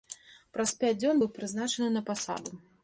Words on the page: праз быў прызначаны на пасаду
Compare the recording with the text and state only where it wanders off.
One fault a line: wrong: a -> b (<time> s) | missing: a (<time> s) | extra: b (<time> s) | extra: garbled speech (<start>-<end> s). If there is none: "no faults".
extra: пяць дзён (0.8 s)